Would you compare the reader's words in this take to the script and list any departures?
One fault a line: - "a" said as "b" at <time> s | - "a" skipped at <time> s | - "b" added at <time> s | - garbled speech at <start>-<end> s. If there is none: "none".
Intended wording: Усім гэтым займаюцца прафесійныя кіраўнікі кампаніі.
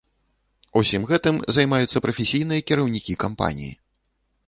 none